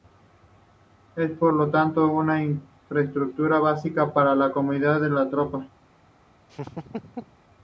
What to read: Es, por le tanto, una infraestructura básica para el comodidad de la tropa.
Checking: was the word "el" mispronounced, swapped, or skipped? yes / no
yes